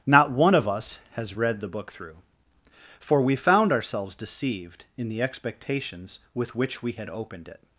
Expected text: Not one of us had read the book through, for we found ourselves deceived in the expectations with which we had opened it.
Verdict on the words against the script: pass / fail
fail